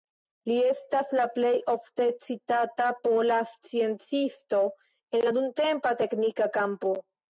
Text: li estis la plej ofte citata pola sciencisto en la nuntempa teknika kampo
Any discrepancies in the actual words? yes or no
yes